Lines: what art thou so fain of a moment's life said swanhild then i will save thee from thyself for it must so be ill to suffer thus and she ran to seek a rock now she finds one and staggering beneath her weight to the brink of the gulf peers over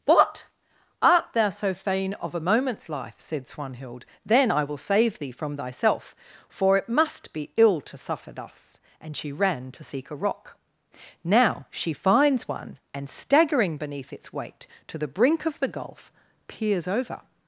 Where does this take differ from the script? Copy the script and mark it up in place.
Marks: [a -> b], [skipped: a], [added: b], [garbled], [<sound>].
what art thou so fain of a moment's life said swanhild then i will save thee from thyself for it must [skipped: so] be ill to suffer thus and she ran to seek a rock now she finds one and staggering beneath [her -> its] weight to the brink of the gulf peers over